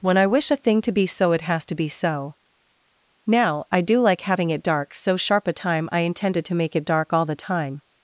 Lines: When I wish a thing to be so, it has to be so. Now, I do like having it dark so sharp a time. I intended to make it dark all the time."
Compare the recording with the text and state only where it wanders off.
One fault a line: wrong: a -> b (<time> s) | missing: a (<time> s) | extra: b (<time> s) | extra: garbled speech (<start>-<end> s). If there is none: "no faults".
no faults